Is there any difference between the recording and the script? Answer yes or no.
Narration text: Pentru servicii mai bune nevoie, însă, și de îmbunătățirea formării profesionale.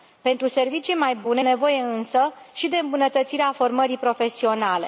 no